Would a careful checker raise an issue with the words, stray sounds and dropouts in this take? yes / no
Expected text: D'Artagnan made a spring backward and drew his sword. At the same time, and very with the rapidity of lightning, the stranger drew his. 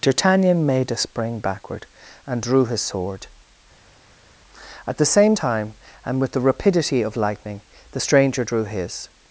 yes